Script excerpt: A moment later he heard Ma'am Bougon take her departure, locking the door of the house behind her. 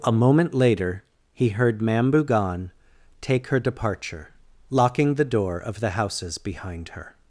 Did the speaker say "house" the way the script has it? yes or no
no